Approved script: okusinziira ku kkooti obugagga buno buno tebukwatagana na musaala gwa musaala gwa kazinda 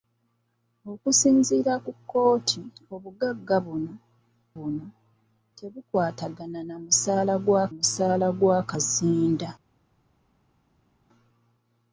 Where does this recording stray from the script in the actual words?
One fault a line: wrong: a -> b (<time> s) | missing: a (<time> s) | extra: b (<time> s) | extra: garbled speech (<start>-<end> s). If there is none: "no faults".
no faults